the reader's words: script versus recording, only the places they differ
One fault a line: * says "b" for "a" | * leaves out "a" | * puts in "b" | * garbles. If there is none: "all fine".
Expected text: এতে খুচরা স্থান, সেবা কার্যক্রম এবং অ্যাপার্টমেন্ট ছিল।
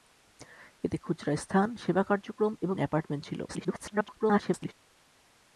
* garbles